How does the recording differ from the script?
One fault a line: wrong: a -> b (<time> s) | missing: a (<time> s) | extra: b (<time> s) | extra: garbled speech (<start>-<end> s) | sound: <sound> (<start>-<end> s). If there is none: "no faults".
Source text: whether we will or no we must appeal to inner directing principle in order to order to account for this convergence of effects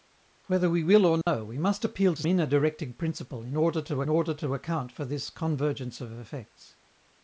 sound: dropout (1.2-1.3 s)